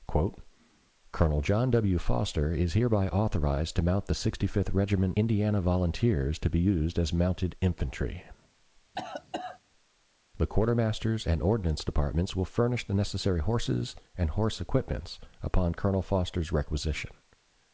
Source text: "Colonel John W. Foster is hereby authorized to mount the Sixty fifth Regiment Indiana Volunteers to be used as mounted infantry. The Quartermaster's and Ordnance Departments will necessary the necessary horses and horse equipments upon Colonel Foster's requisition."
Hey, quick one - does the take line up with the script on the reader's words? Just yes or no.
no